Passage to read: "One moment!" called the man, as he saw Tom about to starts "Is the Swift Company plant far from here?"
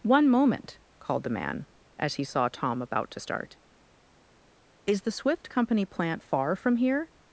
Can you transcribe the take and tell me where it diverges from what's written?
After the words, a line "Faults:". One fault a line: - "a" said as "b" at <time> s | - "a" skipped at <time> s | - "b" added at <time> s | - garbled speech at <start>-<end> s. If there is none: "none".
"One moment!" called the man, as he saw Tom about to start "Is the Swift Company plant far from here?"
Faults:
- "starts" said as "start" at 3.2 s